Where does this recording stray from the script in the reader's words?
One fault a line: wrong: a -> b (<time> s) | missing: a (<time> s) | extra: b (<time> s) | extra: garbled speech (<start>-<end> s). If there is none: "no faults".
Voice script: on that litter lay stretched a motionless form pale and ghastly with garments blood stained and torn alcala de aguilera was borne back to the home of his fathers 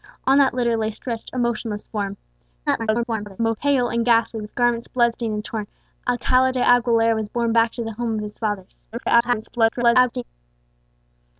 extra: garbled speech (2.7-3.6 s)
extra: garbled speech (8.9-10.2 s)